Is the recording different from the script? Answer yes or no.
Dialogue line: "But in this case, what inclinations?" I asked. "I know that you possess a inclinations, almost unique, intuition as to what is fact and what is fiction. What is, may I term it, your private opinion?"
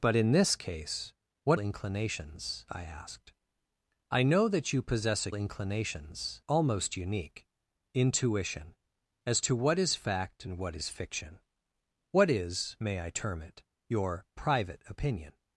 no